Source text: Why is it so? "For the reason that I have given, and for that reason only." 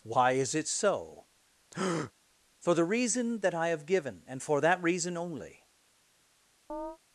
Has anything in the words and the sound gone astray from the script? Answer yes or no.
yes